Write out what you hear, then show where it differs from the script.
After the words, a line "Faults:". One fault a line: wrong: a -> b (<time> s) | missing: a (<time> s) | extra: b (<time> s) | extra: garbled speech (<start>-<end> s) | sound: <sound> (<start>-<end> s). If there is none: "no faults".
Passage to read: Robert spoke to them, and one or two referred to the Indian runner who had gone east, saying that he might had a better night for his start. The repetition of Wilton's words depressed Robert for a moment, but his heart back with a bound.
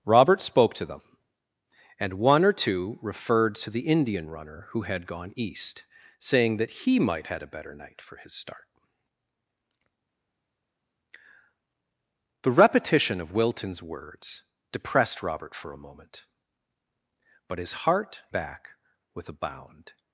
Robert spoke to them, and one or two referred to the Indian runner who had gone east, saying that he might had a better night for his start. The repetition of Wilton's words depressed Robert for a moment, but his heart back with a bound.
Faults:
no faults